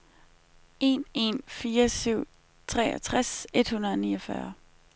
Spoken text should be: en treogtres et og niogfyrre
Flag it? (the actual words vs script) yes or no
yes